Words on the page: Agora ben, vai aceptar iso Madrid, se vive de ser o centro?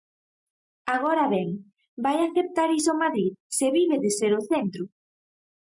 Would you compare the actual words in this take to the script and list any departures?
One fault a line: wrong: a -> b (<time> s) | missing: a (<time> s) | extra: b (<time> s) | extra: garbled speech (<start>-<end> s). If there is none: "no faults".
no faults